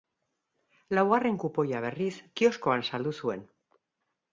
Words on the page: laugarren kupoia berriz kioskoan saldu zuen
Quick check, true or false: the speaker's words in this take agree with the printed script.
true